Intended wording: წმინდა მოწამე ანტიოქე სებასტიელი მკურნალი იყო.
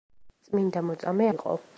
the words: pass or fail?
fail